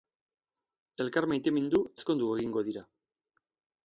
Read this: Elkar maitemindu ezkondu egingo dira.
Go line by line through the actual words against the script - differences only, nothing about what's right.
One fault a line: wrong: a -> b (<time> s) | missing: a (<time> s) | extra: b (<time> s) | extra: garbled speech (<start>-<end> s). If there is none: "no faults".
no faults